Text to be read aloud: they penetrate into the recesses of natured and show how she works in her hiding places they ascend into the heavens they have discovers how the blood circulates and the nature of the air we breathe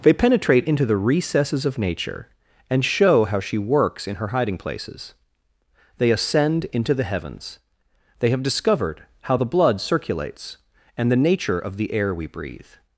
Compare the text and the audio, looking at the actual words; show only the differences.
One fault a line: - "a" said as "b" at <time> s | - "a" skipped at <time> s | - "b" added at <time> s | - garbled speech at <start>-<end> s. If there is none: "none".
- "natured" said as "nature" at 1.8 s
- "discovers" said as "discovered" at 8.4 s